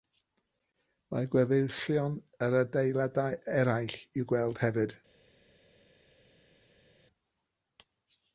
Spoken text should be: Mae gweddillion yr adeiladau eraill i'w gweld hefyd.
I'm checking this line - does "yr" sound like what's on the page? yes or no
yes